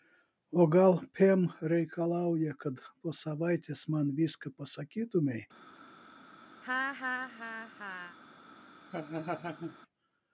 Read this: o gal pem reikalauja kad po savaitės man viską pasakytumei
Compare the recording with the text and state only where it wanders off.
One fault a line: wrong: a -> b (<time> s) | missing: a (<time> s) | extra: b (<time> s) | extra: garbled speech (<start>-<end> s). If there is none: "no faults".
no faults